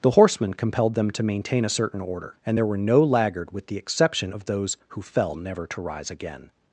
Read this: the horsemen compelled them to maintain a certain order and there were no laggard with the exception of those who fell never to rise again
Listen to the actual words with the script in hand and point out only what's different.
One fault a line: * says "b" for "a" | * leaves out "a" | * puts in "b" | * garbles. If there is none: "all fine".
all fine